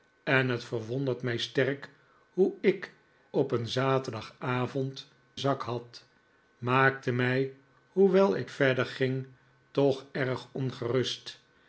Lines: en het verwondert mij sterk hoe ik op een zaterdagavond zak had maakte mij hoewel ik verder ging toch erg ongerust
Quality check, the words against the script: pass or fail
pass